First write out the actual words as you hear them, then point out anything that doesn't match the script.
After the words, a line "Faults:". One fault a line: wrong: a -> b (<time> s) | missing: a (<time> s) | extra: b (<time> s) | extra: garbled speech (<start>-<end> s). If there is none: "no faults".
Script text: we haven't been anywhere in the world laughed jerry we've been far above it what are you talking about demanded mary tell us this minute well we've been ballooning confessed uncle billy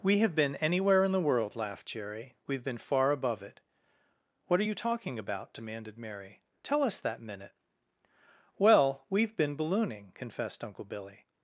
we have been anywhere in the world laughed jerry we've been far above it what are you talking about demanded mary tell us that minute well we've been ballooning confessed uncle billy
Faults:
wrong: haven't -> have (0.2 s)
wrong: this -> that (7.0 s)